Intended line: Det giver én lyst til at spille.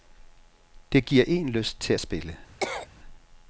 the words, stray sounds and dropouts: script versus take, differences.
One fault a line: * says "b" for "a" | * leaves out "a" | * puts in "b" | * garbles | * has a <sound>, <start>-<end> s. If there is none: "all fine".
* has a cough, 2.6-2.9 s